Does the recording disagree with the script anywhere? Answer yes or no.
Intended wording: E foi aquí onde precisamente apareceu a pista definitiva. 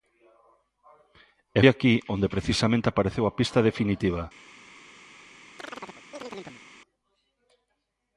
yes